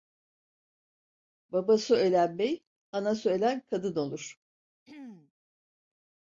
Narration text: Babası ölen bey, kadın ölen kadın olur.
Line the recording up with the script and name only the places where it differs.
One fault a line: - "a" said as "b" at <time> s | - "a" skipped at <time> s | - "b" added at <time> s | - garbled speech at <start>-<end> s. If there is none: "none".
- "kadın" said as "anası" at 2.9 s